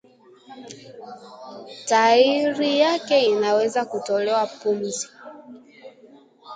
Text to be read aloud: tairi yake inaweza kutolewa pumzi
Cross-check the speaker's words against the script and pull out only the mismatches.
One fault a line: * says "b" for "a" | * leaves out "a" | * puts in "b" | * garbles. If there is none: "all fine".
all fine